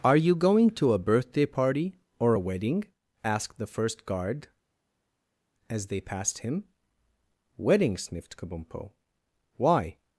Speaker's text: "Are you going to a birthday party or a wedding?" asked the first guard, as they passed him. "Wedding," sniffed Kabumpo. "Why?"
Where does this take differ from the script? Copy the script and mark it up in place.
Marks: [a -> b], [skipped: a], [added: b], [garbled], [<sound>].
"Are you going to a birthday party or a wedding?" asked the first guard, as they passed him. "Wedding," sniffed Kabumpo. "Why?"